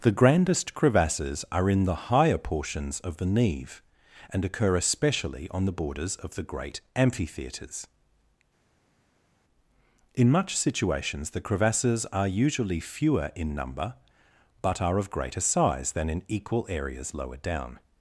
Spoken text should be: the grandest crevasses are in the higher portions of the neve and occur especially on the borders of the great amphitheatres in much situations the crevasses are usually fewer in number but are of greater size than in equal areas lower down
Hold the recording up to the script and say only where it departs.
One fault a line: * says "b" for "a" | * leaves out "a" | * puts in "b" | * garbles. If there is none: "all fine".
all fine